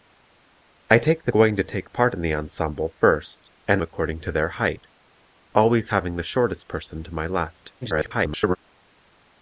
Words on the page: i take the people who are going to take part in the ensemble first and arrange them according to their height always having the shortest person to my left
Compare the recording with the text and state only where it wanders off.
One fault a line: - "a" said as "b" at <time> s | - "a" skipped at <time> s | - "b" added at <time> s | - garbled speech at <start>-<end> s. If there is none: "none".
- "people who are" skipped at 1.3 s
- "arrange them" skipped at 3.8 s
- garbled speech at 7.8-8.6 s